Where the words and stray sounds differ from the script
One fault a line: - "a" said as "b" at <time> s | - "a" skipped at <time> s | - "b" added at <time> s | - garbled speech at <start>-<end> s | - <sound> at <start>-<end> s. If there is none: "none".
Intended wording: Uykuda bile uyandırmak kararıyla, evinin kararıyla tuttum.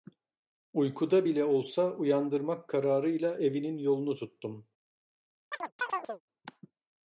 - "olsa" added at 1.4 s
- "kararıyla" said as "yolunu" at 3.8 s
- chirp at 5.5-6.2 s